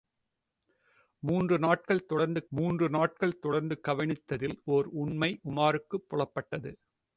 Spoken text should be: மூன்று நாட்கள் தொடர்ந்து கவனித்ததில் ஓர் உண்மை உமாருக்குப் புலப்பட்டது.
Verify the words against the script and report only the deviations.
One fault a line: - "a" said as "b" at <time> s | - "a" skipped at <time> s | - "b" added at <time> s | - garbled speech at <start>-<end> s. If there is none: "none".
- "மூன்று நாட்கள் தொடர்ந்து" added at 2.5 s